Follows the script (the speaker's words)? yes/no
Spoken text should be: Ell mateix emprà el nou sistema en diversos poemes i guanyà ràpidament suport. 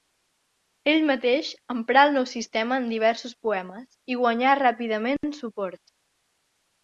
yes